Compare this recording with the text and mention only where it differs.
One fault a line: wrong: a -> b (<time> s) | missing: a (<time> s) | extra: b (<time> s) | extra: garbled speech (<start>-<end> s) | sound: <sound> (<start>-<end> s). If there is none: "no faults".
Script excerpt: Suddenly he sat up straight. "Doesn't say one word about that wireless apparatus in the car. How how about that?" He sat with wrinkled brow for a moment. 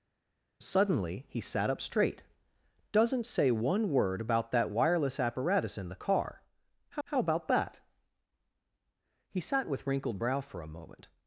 no faults